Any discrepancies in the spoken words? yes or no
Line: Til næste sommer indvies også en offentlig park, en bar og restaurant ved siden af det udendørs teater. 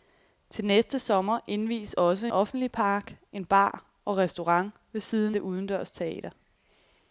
yes